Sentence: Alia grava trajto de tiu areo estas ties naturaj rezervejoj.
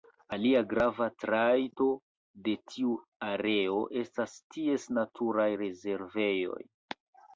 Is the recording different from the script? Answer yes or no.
no